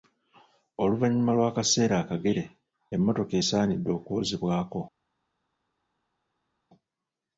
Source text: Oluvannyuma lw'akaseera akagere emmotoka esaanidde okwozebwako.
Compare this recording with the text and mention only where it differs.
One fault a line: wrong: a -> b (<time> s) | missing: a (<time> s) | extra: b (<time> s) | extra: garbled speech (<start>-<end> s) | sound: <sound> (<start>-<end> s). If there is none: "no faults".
no faults